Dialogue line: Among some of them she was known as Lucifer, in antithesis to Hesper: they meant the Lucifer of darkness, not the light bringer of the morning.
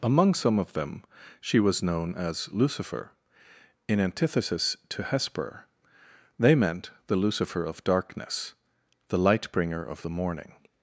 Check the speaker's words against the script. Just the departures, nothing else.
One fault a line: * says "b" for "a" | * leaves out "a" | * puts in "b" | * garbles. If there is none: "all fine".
* leaves out "not"